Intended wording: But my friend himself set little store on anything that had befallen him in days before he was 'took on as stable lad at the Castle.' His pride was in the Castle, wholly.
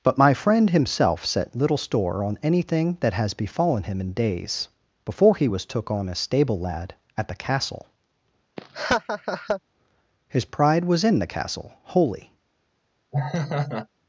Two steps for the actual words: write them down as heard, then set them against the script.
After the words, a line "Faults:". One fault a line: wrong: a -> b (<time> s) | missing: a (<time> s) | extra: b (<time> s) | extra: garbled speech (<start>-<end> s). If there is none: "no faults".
But my friend himself set little store on anything that has befallen him in days before he was 'took on as stable lad at the Castle.' His pride was in the Castle, wholly.
Faults:
wrong: had -> has (3.1 s)